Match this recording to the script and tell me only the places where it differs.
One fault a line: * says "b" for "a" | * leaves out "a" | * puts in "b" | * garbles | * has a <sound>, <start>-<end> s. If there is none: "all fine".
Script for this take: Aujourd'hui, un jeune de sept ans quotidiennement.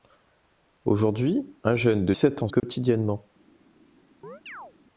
* has a dropout, 2.6-2.6 s
* has a chirp, 4.2-4.7 s